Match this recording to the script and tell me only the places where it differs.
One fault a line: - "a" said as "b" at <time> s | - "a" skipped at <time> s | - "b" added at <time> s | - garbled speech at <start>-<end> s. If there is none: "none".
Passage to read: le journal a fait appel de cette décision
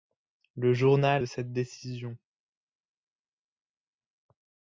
- "a fait appel" skipped at 1.2 s